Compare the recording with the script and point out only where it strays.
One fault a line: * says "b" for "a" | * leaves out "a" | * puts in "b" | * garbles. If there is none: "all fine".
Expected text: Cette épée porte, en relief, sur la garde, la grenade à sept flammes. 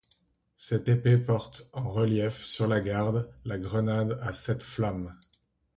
all fine